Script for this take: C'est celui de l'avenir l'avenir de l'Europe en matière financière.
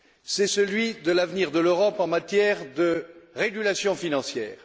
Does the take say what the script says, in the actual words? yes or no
no